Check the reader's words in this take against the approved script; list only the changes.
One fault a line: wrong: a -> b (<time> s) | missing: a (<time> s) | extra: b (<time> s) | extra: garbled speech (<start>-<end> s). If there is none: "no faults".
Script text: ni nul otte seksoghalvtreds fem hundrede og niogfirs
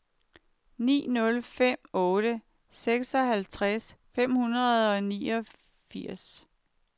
extra: fem (1.5 s)